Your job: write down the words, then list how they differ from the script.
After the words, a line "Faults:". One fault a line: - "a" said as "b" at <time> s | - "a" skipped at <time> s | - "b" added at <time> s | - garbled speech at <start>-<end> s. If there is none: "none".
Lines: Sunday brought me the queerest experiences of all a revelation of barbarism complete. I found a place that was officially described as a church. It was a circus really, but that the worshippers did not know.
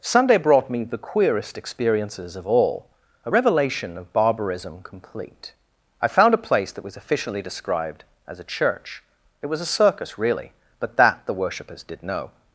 Sunday brought me the queerest experiences of all a revelation of barbarism complete. I found a place that was officially described as a church. It was a circus really, but that the worshippers did know.
Faults:
- "not" skipped at 12.0 s